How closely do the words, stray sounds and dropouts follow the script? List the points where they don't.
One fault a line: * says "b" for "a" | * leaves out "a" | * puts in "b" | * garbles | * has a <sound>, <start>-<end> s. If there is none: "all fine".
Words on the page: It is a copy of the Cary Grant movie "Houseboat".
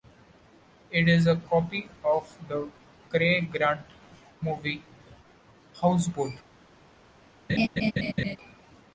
* has a laugh, 7.5-8.4 s